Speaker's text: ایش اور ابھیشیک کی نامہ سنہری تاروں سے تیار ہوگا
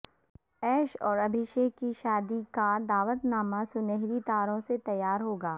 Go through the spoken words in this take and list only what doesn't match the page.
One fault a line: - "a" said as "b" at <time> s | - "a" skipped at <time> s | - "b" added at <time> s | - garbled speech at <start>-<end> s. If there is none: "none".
- "شادی کا دعوت" added at 2.0 s